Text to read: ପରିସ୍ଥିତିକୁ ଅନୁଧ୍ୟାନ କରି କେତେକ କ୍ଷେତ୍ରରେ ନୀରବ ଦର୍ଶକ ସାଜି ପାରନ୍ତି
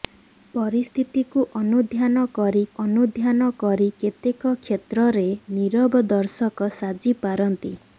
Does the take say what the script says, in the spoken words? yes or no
no